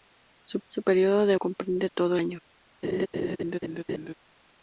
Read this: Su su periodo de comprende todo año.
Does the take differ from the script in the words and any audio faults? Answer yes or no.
yes